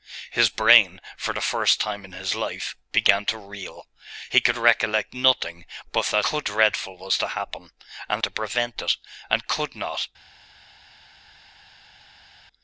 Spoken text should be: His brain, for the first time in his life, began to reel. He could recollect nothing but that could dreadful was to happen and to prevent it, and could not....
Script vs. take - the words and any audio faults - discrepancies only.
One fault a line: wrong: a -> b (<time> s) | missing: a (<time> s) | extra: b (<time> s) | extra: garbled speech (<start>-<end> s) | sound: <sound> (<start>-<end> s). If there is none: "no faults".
no faults